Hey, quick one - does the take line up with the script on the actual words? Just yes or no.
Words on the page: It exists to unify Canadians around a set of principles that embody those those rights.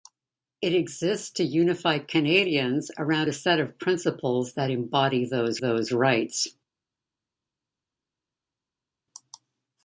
yes